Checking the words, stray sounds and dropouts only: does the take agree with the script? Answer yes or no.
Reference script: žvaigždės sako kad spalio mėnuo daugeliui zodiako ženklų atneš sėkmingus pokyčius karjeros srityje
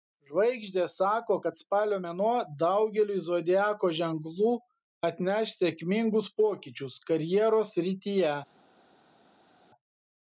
yes